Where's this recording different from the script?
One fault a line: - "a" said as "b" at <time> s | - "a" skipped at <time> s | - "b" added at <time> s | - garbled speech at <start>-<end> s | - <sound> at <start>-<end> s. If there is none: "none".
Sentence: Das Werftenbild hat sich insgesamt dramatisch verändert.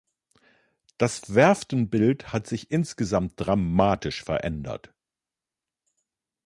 none